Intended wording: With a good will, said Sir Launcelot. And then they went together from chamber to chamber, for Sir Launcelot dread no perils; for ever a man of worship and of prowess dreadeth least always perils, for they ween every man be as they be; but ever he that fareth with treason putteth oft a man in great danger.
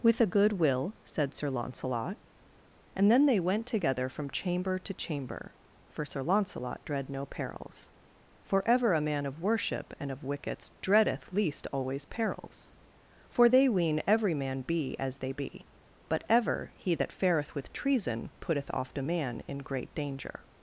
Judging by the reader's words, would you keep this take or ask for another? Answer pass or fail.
fail